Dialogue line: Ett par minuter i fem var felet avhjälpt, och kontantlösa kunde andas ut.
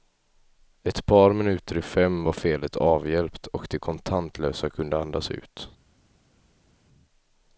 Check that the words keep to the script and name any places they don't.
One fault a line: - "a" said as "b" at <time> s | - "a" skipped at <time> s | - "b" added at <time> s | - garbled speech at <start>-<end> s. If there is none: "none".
- "de" added at 3.7 s